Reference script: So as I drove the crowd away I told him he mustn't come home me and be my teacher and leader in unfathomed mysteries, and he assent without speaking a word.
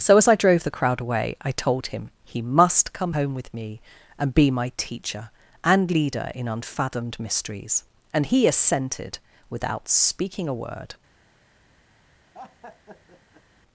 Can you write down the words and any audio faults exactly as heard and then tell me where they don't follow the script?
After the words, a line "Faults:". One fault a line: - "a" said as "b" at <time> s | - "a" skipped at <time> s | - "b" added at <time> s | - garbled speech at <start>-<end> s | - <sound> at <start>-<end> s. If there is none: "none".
So as I drove the crowd away I told him he must come home with me and be my teacher and leader in unfathomed mysteries, and he assented without speaking a word.
Faults:
- "mustn't" said as "must" at 2.4 s
- "with" added at 3.3 s
- "assent" said as "assented" at 8.5 s
- laugh at 12.3-13.4 s